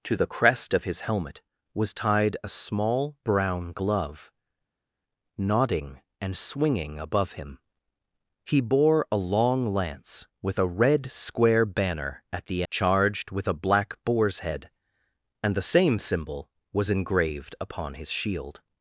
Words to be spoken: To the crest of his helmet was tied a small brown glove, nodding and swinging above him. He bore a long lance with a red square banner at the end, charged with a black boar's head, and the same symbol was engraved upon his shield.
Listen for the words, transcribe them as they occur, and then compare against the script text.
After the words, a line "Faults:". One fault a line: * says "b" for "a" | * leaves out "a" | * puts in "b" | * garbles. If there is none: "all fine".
To the crest of his helmet was tied a small brown glove, nodding and swinging above him. He bore a long lance with a red square banner at the charged with a black boar's head, and the same symbol was engraved upon his shield.
Faults:
* leaves out "end"